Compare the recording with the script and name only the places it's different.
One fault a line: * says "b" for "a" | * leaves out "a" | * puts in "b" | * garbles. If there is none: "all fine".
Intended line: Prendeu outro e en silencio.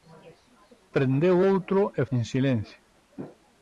all fine